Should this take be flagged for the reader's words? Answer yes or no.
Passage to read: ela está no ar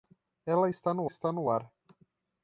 yes